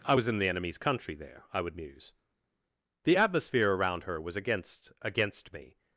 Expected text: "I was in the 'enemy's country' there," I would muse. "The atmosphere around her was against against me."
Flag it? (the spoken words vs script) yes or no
no